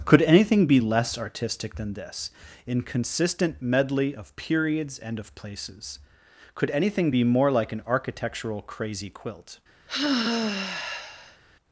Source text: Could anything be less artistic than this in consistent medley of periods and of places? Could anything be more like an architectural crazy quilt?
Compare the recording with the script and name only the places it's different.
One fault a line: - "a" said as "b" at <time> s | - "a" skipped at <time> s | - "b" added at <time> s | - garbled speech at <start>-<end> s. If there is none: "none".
none